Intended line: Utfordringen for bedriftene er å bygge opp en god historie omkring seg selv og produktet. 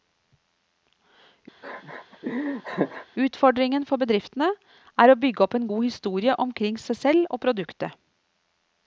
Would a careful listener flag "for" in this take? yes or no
no